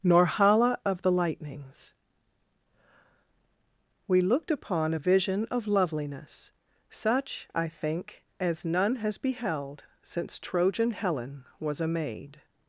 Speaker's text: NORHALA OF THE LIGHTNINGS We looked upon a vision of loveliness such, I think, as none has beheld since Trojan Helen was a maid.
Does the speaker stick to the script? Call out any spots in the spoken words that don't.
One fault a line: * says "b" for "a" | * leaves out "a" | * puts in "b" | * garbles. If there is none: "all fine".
all fine